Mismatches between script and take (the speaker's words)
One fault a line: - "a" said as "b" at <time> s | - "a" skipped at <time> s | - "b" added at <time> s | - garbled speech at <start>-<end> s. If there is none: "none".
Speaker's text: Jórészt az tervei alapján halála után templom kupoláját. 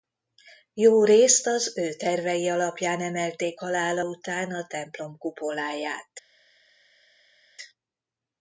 - "ő" added at 1.8 s
- "emelték" added at 3.0 s
- "a" added at 4.5 s